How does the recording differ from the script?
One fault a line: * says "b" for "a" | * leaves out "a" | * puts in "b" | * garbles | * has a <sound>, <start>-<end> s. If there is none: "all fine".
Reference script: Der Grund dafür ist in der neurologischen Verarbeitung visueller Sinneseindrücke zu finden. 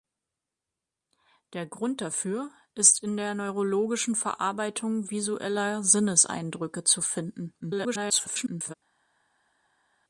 * garbles